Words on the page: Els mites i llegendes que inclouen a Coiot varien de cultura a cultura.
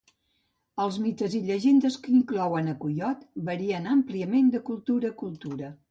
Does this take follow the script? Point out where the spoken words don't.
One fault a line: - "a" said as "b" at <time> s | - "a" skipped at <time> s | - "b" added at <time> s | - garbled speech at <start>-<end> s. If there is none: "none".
- "àmpliament" added at 4.0 s